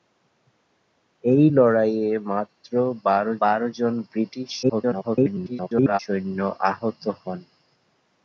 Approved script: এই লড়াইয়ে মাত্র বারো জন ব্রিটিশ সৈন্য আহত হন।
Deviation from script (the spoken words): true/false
true